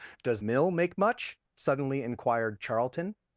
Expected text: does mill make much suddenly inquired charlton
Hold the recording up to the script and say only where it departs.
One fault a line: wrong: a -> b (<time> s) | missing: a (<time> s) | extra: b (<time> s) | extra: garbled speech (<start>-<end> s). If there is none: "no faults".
no faults